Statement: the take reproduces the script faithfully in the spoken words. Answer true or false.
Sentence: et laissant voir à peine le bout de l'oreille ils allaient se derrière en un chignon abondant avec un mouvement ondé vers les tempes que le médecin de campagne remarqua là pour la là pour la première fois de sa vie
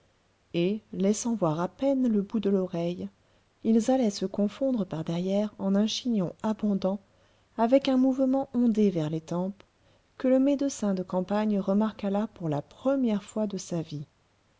false